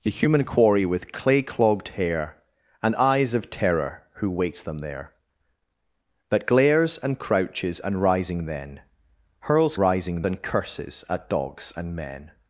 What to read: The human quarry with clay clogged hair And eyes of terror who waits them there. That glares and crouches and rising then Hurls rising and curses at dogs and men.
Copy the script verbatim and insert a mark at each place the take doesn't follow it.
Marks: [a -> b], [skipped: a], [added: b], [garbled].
The human quarry with clay clogged hair And eyes of terror who waits them there. That glares and crouches and rising then Hurls rising and curses at dogs and men.